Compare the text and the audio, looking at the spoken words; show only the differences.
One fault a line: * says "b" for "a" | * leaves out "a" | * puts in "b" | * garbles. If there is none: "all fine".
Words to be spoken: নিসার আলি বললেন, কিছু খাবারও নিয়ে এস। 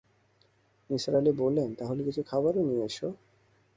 * puts in "তাহলে"